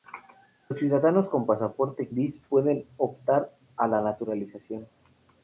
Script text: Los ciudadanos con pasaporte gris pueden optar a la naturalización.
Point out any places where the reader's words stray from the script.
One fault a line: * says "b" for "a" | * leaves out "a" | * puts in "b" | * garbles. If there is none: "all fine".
all fine